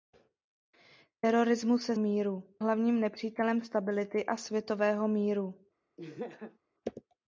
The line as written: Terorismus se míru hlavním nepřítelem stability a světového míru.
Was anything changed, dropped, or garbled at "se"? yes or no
no